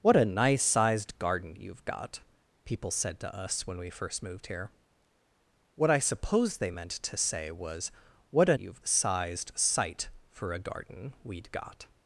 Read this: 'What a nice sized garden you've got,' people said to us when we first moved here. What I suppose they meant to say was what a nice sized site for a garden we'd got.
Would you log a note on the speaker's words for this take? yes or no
yes